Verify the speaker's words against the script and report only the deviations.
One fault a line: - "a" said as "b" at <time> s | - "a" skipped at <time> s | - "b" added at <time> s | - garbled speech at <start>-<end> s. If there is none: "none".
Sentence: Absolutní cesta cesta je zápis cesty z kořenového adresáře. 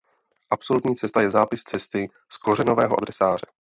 - "cesta" skipped at 1.2 s